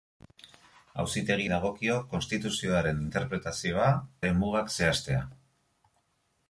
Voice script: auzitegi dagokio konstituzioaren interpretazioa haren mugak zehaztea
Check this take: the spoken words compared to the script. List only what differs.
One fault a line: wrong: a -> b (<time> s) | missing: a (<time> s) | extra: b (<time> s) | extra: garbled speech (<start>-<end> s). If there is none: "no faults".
no faults